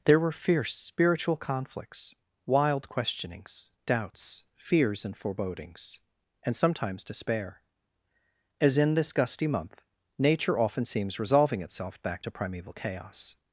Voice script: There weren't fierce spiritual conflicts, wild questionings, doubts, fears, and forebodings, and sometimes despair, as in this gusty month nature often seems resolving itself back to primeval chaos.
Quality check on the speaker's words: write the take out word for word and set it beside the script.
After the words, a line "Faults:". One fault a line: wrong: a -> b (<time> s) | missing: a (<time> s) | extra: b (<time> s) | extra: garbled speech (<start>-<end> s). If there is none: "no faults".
There were fierce spiritual conflicts, wild questionings, doubts, fears, and forebodings, and sometimes despair, as in this gusty month nature often seems resolving itself back to primeval chaos.
Faults:
wrong: weren't -> were (0.2 s)